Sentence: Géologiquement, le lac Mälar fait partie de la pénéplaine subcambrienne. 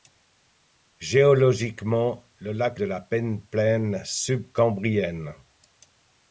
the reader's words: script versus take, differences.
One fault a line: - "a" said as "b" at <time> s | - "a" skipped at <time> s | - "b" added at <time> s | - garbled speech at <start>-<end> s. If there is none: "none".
- "Mälar fait partie" skipped at 2.8 s